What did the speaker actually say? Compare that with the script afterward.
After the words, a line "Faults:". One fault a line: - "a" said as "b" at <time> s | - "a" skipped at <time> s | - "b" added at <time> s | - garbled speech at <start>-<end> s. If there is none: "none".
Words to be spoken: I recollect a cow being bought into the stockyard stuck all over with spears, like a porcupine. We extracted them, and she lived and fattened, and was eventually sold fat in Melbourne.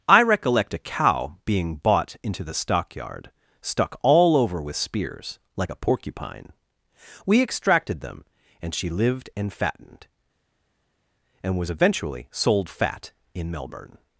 I recollect a cow being bought into the stockyard stuck all over with spears, like a porcupine. We extracted them, and she lived and fattened, and was eventually sold fat in Melbourne.
Faults:
none